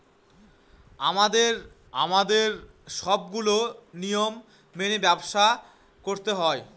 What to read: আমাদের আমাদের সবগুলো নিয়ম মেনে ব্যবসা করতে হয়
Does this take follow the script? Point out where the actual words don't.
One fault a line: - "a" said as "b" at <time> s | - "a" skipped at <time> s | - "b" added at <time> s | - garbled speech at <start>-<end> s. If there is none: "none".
none